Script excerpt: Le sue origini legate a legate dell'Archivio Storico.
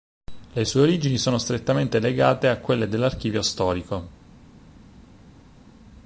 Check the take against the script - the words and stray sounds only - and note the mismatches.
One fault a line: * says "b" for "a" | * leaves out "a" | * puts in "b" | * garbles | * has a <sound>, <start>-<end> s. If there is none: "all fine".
* puts in "sono strettamente"
* says "quelle" for "legate"